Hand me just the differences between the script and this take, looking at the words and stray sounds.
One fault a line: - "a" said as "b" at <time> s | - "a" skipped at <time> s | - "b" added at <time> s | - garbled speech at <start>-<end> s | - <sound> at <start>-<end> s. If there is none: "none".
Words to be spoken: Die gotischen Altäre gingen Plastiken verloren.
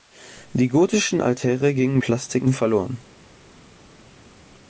none